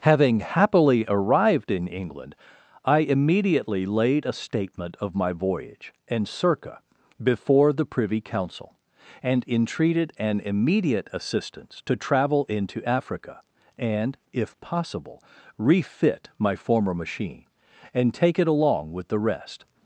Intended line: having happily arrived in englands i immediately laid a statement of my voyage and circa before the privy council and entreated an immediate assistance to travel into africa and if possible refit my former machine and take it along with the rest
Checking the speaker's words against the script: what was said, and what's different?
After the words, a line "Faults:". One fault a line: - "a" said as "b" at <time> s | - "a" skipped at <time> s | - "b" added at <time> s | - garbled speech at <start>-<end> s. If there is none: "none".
having happily arrived in england i immediately laid a statement of my voyage and circa before the privy council and entreated an immediate assistance to travel into africa and if possible refit my former machine and take it along with the rest
Faults:
- "englands" said as "england" at 1.9 s